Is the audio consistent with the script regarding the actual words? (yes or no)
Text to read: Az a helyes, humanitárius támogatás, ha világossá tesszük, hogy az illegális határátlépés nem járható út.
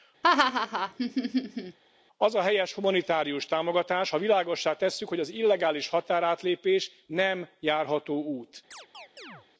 yes